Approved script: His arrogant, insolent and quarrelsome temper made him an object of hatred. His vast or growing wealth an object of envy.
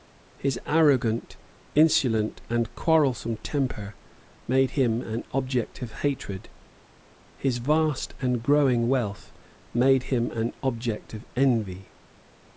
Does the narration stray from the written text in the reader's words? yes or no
yes